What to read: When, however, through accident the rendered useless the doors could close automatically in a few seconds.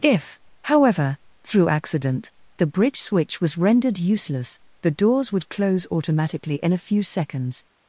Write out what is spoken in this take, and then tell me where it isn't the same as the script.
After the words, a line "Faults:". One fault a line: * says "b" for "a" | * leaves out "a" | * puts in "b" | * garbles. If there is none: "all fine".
If, however, through accident the bridge switch was rendered useless the doors would close automatically in a few seconds.
Faults:
* says "If" for "When"
* puts in "bridge switch was"
* says "would" for "could"